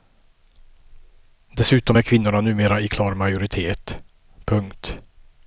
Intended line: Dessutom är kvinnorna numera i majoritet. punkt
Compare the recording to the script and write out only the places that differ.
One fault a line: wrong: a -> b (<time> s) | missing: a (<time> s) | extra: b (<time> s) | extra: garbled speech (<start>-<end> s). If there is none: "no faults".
extra: klar (2.9 s)